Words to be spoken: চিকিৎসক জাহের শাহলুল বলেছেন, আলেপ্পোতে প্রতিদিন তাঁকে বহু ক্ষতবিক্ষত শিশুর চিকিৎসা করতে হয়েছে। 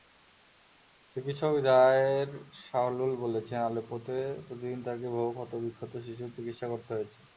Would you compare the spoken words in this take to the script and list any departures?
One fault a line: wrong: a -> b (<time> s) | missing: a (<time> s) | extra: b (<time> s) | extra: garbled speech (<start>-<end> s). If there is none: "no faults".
no faults